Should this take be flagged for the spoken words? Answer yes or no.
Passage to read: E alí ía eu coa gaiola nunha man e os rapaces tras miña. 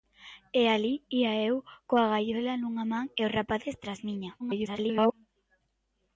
yes